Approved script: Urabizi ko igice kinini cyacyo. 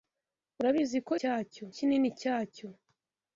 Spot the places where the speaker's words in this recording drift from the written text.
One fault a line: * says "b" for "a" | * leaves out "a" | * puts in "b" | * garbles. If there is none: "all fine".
* says "cyacyo" for "igice"